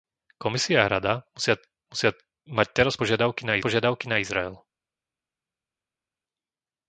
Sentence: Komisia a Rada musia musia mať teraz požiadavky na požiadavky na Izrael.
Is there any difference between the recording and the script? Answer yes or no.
no